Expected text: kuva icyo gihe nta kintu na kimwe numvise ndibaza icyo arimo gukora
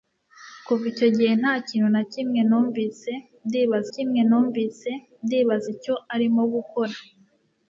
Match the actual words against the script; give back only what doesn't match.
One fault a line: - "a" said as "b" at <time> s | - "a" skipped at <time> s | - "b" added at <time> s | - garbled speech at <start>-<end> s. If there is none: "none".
- "kimwe numvise ndibaza" added at 3.9 s